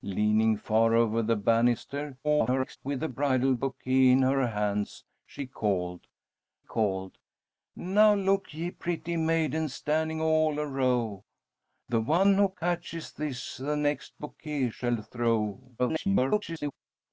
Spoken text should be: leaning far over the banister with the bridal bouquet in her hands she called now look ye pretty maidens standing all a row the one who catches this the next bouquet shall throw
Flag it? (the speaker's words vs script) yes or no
yes